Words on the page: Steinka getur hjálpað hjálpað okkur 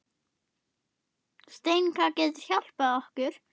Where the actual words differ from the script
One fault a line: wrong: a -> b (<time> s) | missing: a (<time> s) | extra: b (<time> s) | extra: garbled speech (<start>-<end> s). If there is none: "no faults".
missing: hjálpað (3.0 s)